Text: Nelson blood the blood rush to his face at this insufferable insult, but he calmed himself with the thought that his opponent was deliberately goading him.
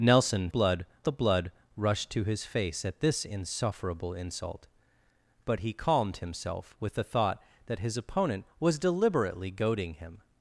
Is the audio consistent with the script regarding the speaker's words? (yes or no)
yes